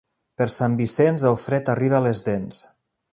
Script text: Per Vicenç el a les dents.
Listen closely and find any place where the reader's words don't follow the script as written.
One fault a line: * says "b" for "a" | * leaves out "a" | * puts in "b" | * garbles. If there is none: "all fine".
* puts in "Sant"
* puts in "fred arriba"